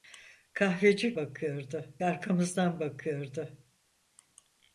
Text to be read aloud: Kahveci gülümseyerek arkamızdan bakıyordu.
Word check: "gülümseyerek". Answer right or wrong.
wrong